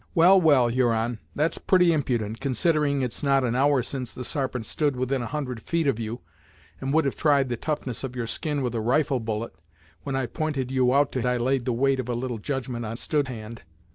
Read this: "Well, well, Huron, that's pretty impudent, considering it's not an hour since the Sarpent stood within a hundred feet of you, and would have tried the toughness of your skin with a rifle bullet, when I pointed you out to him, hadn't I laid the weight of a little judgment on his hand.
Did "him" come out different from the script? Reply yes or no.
yes